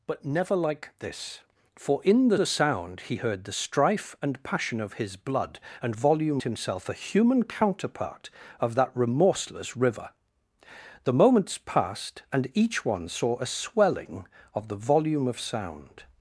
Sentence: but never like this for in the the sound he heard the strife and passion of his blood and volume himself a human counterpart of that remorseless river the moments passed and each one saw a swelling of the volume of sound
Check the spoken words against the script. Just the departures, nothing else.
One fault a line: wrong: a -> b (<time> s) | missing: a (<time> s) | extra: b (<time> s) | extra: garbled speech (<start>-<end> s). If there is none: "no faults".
no faults